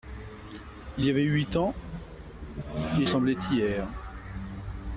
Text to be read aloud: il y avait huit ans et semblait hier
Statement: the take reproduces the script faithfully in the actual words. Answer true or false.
true